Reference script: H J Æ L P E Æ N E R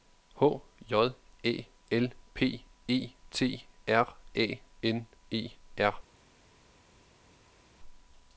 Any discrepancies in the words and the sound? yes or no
yes